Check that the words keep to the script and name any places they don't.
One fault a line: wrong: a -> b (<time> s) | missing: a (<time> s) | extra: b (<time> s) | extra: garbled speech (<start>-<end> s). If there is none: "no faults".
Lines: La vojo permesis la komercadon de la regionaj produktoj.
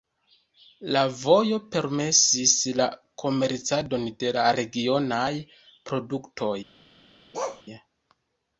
no faults